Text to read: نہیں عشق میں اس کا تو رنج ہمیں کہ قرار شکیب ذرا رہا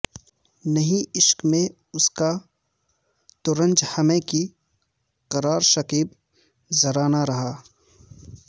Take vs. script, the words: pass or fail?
fail